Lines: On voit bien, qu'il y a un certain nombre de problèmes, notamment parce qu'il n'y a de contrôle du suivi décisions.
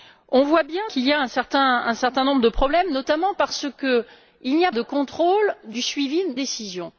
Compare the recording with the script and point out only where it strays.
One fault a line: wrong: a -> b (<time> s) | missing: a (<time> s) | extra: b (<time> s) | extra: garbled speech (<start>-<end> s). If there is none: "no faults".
no faults